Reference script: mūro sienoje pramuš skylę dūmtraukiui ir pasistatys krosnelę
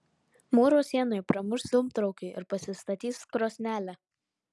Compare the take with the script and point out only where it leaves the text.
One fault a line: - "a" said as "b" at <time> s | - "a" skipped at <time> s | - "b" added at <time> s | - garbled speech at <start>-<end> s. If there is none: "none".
- "skylę" skipped at 1.6 s